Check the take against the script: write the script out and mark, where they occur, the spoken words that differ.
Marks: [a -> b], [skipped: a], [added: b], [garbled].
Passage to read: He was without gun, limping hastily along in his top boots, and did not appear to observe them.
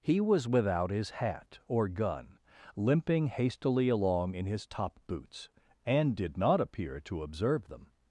He was without [added: his hat or] gun, limping hastily along in his top boots, and did not appear to observe them.